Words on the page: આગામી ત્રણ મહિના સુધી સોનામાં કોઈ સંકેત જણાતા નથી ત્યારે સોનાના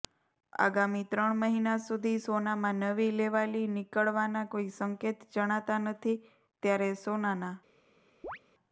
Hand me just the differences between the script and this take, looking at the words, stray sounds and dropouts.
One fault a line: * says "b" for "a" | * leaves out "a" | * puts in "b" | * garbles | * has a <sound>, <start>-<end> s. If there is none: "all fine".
* puts in "નવી લેવાલી નીકળવાના"
* has a chirp, 8.2-8.4 s